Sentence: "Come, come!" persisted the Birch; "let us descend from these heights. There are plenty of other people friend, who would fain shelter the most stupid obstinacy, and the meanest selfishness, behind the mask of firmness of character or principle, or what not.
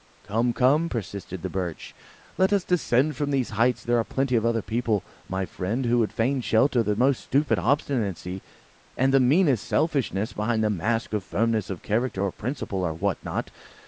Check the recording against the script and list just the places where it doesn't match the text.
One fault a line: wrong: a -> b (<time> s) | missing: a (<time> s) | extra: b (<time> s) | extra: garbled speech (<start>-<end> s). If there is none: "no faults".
extra: my (5.3 s)